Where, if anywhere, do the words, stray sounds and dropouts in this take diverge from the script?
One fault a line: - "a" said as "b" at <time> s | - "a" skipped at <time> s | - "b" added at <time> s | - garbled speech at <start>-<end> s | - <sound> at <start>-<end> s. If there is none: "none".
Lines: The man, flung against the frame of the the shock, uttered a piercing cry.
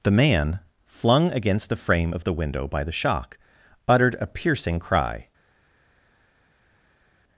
- "window by" added at 2.3 s